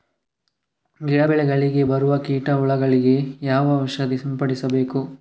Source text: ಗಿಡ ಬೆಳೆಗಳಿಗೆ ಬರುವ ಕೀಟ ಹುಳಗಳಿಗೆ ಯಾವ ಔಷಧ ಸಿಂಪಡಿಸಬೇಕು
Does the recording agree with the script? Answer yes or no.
yes